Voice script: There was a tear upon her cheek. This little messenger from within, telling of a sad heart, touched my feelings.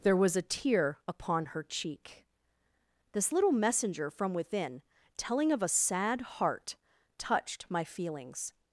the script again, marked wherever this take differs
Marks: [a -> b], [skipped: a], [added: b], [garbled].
There was a tear upon her cheek. This little messenger from within, telling of a sad heart, touched my feelings.